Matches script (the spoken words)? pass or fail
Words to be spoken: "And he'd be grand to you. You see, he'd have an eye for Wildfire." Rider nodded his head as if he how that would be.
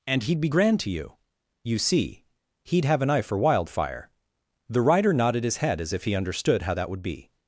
fail